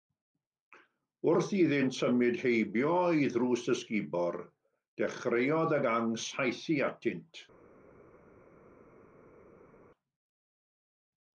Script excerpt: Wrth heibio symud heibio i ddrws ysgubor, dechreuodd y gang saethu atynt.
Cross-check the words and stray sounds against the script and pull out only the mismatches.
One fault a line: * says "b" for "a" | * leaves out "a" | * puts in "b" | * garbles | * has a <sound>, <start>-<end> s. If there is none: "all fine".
* says "iddynt" for "heibio"